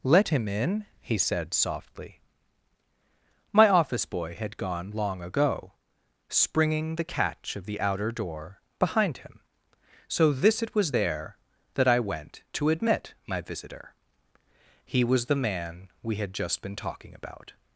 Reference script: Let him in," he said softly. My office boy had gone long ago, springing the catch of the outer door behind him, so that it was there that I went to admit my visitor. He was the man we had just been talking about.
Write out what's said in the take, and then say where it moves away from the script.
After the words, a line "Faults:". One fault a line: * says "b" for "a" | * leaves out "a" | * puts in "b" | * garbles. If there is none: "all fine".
Let him in," he said softly. My office boy had gone long ago, springing the catch of the outer door behind him, so this it was there that I went to admit my visitor. He was the man we had just been talking about.
Faults:
* says "this" for "that"